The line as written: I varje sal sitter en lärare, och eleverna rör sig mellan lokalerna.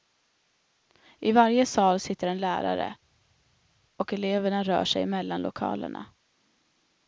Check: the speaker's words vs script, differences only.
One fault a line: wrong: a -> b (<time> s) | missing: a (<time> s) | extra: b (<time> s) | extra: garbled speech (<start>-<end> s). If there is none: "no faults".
no faults